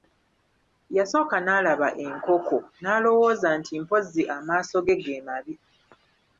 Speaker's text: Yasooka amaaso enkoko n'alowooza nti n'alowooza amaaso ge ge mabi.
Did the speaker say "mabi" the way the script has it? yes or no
yes